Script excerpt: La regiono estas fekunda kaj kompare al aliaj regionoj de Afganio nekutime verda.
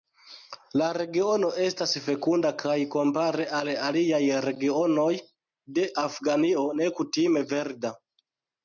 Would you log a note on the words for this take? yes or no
no